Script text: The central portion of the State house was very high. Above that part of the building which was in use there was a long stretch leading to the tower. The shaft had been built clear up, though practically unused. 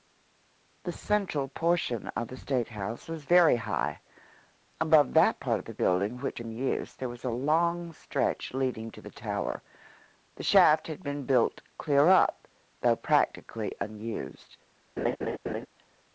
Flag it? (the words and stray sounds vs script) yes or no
yes